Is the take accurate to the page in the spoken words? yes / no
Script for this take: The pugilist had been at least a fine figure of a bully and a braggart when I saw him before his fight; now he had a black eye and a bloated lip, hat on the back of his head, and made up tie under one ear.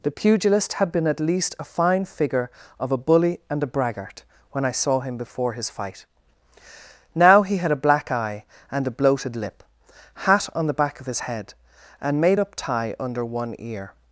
yes